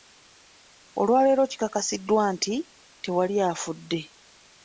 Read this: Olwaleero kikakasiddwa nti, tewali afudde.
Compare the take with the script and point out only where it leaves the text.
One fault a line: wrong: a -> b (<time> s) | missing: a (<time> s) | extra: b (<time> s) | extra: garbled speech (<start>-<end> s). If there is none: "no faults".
no faults